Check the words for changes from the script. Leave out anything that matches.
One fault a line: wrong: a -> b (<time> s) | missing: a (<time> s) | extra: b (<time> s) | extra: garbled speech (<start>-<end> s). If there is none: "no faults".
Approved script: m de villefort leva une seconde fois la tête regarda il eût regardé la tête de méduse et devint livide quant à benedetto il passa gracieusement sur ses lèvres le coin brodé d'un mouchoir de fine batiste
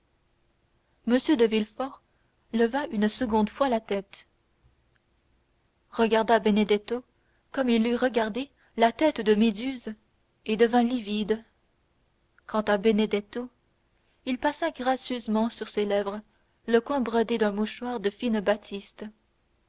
extra: benedetto comme (6.4 s)